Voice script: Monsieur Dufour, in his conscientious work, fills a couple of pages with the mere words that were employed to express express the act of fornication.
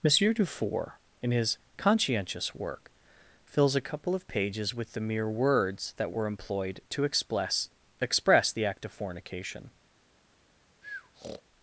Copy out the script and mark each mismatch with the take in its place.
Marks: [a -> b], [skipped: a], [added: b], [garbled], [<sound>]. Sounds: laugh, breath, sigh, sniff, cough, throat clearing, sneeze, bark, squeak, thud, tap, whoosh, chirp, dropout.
Monsieur Dufour, in his conscientious work, fills a couple of pages with the mere words that were employed to express express the act of fornication. [breath]